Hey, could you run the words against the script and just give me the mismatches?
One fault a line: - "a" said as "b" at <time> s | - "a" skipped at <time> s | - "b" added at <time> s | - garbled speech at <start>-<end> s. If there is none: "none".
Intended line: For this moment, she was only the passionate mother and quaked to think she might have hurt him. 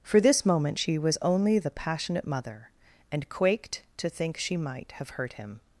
none